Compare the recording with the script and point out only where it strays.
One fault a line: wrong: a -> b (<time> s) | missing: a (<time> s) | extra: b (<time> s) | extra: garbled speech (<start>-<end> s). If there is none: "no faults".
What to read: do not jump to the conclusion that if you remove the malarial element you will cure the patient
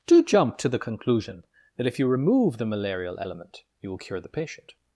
missing: not (0.2 s)